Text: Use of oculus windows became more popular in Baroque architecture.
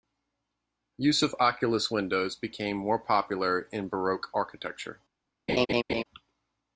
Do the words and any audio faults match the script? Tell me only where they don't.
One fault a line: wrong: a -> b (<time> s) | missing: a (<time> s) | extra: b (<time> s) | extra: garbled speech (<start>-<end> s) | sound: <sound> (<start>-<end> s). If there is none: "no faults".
sound: laugh (5.5-6.0 s)